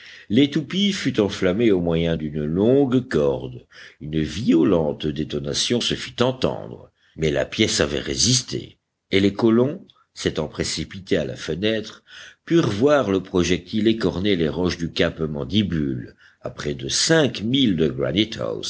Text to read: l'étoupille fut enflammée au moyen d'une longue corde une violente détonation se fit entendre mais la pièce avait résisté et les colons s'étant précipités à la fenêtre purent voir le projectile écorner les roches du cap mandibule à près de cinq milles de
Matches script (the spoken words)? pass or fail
pass